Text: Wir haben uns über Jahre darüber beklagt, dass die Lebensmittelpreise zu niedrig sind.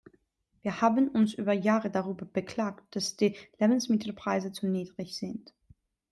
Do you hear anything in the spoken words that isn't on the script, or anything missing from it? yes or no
no